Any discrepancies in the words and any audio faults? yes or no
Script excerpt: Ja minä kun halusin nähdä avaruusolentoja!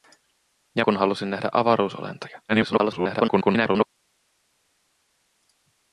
yes